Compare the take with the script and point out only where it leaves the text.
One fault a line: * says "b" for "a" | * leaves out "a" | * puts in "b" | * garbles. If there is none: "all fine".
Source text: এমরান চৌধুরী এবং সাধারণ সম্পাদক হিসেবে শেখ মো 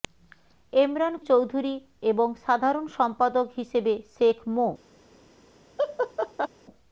all fine